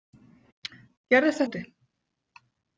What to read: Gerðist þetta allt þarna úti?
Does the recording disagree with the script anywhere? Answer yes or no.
yes